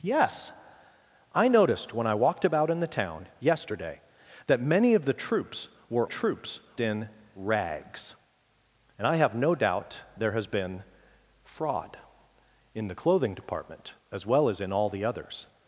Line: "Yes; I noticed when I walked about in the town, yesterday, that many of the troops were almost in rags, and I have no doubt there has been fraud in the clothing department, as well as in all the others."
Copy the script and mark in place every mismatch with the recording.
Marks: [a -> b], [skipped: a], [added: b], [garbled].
"Yes; I noticed when I walked about in the town, yesterday, that many of the troops were [almost -> troops] in rags, and I have no doubt there has been fraud in the clothing department, as well as in all the others."